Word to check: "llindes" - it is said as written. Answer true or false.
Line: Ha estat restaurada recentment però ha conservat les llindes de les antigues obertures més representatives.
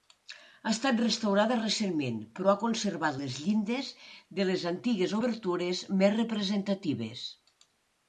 true